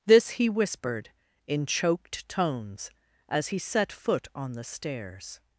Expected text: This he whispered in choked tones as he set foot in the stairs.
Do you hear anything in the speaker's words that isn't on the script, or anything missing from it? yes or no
yes